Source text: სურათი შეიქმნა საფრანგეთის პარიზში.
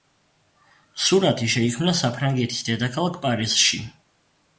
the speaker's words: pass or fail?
fail